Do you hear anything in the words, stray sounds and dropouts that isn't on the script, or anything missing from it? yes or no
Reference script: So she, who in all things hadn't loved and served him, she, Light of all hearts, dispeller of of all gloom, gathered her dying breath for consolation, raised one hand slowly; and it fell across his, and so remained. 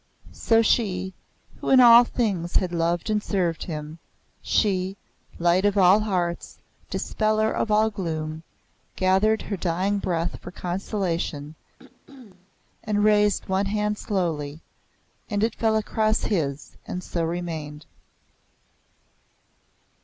yes